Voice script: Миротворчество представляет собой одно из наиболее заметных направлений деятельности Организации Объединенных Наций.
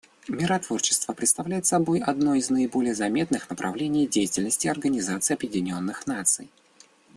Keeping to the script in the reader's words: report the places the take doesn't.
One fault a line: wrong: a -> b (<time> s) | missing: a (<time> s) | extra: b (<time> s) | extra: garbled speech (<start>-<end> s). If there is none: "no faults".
no faults